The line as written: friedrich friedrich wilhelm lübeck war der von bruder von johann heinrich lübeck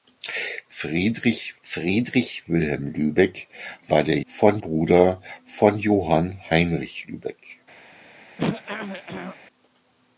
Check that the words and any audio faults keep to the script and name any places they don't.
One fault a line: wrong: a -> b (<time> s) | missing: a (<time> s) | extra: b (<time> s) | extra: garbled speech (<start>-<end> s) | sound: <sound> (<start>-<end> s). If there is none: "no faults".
sound: throat clearing (8.4-9.4 s)